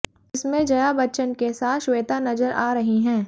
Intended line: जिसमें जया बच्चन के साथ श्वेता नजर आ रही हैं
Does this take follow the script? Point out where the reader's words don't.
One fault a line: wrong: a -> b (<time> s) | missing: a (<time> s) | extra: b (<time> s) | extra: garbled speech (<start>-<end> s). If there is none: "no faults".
no faults